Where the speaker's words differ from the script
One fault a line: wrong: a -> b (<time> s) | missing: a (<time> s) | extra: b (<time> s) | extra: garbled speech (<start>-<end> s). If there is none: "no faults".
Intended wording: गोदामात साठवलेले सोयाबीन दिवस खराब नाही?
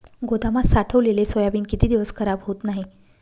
extra: किती (1.6 s)
extra: होत (2.4 s)